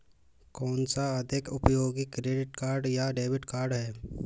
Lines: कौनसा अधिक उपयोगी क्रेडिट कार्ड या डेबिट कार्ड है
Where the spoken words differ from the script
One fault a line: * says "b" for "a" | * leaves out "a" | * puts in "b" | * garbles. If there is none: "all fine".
all fine